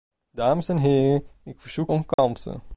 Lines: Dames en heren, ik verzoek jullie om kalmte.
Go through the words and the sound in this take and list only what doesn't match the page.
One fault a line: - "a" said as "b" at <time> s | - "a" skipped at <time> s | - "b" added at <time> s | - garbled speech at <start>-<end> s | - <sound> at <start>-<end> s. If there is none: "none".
- "jullie" skipped at 1.9 s
- dropout at 2.1-2.2 s